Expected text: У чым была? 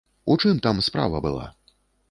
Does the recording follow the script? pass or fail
fail